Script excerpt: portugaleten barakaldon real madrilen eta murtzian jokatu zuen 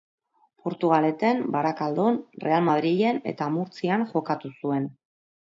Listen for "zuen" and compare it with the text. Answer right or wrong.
right